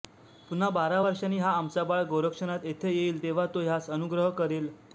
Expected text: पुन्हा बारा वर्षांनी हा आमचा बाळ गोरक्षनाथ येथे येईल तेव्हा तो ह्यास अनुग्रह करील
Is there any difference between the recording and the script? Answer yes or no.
no